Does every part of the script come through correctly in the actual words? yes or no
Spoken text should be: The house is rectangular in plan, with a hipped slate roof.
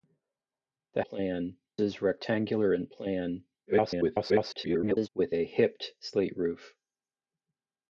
no